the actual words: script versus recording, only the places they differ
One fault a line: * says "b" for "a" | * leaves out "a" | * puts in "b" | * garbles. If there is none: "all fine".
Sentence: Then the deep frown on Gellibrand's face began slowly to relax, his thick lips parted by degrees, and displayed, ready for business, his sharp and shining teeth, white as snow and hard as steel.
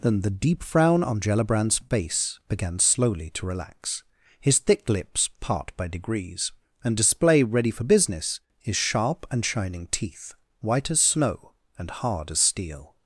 * says "part" for "parted"
* says "display" for "displayed"